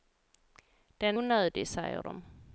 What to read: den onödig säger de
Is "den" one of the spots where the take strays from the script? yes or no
no